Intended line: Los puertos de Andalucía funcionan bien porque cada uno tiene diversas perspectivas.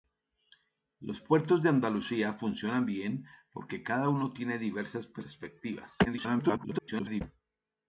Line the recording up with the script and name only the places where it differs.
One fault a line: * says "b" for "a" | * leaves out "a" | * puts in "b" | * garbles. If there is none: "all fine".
* garbles